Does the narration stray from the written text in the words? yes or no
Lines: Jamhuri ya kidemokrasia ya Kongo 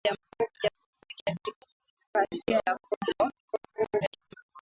yes